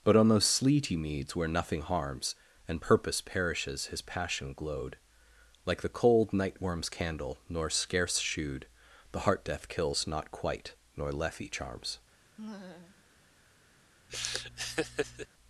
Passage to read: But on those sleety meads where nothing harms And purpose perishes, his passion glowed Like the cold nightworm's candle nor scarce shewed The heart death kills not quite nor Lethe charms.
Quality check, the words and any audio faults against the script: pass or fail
fail